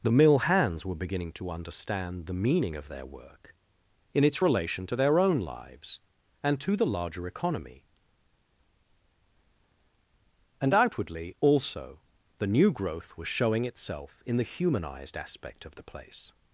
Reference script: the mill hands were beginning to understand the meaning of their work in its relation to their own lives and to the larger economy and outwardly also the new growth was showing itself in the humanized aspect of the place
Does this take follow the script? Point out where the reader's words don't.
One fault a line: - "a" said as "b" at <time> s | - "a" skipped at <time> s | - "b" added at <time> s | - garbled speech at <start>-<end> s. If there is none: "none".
none